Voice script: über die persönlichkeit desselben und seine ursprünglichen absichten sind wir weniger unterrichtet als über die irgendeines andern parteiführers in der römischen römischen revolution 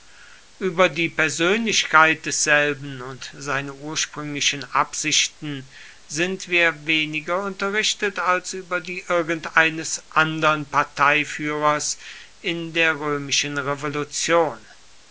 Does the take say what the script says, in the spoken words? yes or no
no